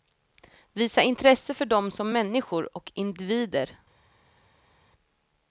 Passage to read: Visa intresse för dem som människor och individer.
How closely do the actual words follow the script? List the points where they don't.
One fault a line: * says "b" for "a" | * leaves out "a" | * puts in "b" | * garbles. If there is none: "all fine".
all fine